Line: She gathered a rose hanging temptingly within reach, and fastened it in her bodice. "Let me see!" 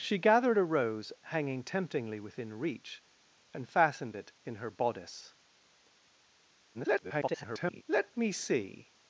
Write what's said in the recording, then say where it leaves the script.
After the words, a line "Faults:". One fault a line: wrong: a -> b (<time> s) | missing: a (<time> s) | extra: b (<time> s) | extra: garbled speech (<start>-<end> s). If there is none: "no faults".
She gathered a rose hanging temptingly within reach, and fastened it in her bodice. [garbled] "Let me see!"
Faults:
extra: garbled speech (6.7-7.8 s)